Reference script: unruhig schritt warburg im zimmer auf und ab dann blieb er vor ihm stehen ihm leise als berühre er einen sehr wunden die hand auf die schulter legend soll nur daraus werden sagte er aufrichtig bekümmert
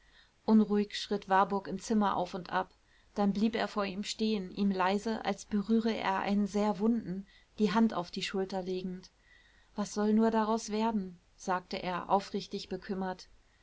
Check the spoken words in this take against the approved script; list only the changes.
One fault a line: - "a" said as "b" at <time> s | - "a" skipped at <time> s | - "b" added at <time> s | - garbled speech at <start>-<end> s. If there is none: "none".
- "was" added at 9.8 s